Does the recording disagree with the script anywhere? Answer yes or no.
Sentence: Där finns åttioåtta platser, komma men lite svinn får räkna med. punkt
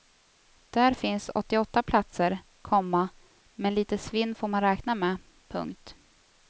yes